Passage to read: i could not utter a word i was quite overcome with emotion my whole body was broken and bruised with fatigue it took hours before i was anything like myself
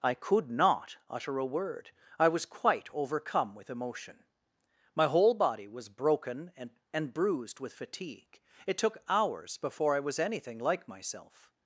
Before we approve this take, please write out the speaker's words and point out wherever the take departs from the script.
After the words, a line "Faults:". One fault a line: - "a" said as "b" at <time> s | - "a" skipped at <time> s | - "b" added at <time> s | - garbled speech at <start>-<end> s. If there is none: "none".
i could not utter a word i was quite overcome with emotion my whole body was broken and and bruised with fatigue it took hours before i was anything like myself
Faults:
- "and" added at 6.9 s